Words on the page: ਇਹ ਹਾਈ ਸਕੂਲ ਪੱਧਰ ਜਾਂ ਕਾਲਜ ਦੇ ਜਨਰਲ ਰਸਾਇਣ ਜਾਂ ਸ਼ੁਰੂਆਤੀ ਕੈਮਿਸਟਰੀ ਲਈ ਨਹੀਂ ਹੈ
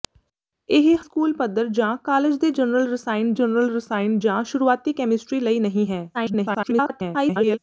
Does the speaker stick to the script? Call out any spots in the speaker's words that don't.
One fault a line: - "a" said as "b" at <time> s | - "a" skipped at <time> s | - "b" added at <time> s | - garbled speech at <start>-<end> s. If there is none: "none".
- "ਹਾਈ" skipped at 1.0 s
- "ਜਨਰਲ ਰਸਾਇਣ" added at 3.3 s
- garbled speech at 6.1-7.6 s